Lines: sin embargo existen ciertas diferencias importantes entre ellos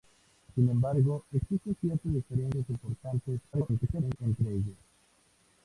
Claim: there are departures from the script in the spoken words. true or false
true